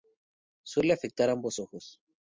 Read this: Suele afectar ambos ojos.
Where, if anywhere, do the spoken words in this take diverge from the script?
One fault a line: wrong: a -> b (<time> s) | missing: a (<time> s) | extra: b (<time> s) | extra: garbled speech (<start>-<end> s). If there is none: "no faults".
no faults